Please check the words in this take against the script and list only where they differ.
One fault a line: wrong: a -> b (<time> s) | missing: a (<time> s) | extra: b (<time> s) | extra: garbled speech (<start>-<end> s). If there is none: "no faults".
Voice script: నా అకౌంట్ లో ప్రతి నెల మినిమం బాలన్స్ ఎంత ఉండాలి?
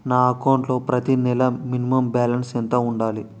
no faults